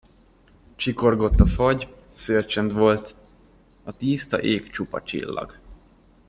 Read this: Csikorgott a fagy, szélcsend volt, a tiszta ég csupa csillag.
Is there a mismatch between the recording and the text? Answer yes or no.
no